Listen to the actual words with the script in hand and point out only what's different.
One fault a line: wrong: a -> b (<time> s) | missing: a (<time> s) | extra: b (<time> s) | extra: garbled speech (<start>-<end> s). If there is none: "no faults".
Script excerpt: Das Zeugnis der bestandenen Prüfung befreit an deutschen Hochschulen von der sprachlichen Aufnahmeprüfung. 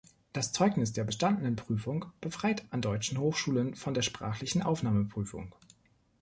no faults